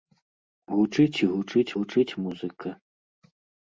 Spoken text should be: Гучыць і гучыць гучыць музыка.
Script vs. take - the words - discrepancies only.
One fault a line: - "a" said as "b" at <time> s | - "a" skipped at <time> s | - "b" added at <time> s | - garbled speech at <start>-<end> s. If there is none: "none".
none